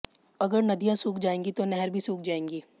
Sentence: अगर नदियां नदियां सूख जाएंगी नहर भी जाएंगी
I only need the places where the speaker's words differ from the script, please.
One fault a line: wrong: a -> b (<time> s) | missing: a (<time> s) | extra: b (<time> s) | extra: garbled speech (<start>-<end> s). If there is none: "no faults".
missing: नदियां (0.9 s)
extra: तो (1.5 s)
extra: सूख (2.0 s)